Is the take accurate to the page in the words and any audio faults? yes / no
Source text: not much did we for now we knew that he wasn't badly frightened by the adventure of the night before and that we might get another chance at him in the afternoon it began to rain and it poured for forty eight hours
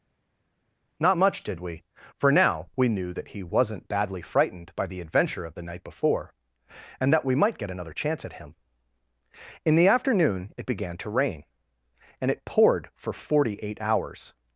yes